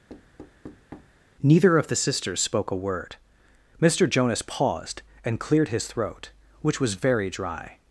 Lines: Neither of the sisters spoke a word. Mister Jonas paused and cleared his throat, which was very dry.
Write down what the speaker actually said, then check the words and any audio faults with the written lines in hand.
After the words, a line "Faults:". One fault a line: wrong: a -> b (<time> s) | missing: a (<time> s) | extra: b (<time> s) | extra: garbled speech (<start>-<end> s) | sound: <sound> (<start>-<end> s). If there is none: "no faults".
Neither of the sisters spoke a word. Mister Jonas paused and cleared his throat, which was very dry.
Faults:
sound: thud (0.1-1.2 s)